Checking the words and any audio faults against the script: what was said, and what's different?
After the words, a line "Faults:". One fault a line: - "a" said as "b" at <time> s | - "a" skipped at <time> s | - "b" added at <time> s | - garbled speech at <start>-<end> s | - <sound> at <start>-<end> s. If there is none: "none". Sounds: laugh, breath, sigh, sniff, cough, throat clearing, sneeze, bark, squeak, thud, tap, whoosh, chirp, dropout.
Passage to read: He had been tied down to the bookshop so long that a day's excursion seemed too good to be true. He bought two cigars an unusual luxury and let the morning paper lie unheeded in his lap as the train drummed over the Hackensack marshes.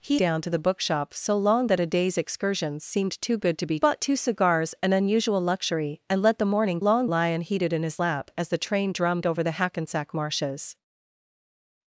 He down to the bookshop so long that a day's excursion seemed too good to be bought two cigars an unusual luxury and let the morning long lie unheeded in his lap as the train drummed over the Hackensack marshes.
Faults:
- "had been tied" skipped at 0.2 s
- "true He" skipped at 3.8 s
- "paper" said as "long" at 6.8 s